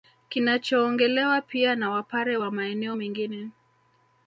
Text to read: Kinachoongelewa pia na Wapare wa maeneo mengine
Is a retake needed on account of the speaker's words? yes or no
no